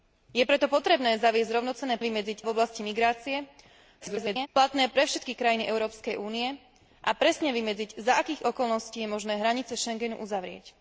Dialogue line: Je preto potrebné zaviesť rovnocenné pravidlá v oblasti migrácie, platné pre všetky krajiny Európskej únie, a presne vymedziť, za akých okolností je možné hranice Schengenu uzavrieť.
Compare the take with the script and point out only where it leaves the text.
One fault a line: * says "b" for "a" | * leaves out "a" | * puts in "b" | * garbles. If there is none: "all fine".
* says "vymedziť" for "pravidlá"
* garbles